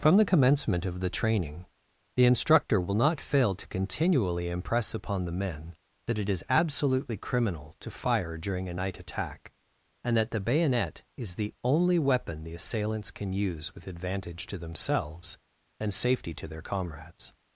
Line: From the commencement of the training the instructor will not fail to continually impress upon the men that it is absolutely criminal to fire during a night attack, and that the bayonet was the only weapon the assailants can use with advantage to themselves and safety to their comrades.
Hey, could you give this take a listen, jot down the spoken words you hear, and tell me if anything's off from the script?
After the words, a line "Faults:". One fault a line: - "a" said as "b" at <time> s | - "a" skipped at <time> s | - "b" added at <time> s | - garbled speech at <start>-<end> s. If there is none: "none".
From the commencement of the training the instructor will not fail to continually impress upon the men that it is absolutely criminal to fire during a night attack, and that the bayonet is the only weapon the assailants can use with advantage to themselves and safety to their comrades.
Faults:
- "was" said as "is" at 11.2 s